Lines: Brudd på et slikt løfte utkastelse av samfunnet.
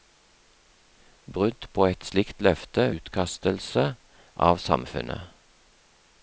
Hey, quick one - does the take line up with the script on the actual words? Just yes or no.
yes